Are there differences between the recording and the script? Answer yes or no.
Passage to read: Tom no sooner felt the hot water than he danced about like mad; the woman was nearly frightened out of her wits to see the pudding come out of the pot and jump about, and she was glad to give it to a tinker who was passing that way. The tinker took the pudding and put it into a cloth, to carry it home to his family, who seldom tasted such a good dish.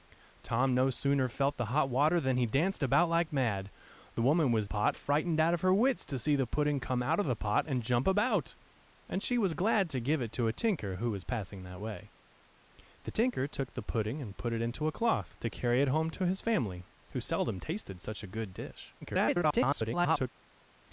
yes